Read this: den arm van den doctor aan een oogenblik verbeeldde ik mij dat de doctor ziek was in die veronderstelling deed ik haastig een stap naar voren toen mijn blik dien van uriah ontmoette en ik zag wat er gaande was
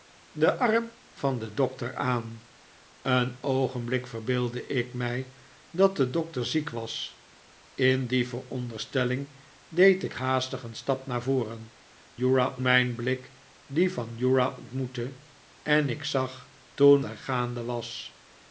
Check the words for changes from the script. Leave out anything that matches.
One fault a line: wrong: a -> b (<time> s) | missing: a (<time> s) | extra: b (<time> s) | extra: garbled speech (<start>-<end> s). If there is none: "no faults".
wrong: toen -> uriah (12.2 s)
wrong: wat -> toen (16.7 s)